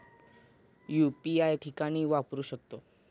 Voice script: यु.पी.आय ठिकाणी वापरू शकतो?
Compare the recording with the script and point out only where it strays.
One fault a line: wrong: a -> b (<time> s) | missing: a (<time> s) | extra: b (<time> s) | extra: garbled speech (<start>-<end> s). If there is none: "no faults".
no faults